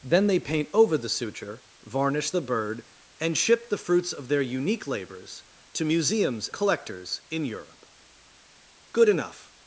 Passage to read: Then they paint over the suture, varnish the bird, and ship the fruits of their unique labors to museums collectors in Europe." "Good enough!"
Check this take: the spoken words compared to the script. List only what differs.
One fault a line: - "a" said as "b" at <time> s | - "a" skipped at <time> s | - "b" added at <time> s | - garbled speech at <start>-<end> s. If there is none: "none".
none